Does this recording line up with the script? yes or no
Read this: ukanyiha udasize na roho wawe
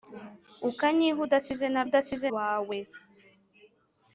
no